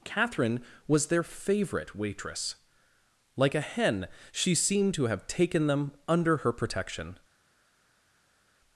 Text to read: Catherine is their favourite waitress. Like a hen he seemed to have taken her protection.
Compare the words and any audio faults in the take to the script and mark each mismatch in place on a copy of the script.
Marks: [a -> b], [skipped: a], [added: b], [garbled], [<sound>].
Catherine [is -> was] their favourite waitress. Like a hen [he -> she] seemed to have taken [added: them under] her protection.